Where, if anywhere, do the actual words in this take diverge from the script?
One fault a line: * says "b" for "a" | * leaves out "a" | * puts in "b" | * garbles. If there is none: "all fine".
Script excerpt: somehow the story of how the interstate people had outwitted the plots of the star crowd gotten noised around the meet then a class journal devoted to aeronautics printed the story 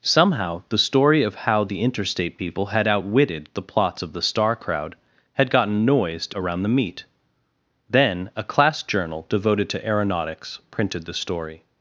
* puts in "had"